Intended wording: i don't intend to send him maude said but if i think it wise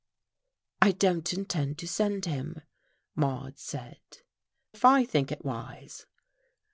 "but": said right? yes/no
no